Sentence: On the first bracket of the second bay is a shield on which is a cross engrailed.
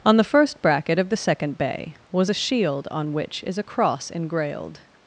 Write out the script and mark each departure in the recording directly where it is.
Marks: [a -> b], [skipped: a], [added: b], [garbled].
On the first bracket of the second bay [is -> was] a shield on which is a cross engrailed.